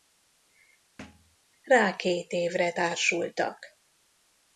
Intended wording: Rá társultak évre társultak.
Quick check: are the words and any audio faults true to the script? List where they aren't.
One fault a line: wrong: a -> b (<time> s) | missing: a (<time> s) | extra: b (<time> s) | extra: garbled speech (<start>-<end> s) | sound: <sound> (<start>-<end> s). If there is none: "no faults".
sound: thud (1.0-1.4 s)
wrong: társultak -> két (2.0 s)